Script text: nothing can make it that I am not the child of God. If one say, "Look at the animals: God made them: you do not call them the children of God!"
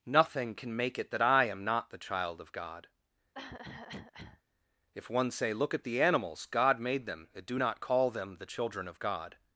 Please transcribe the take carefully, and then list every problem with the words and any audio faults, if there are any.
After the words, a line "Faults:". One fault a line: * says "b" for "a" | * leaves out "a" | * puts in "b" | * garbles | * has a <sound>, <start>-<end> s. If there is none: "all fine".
nothing can make it that I am not the child of God. If one say, "Look at the animals: God made them: and do not call them the children of God!"
Faults:
* has a cough, 3.3-4.4 s
* says "and" for "you"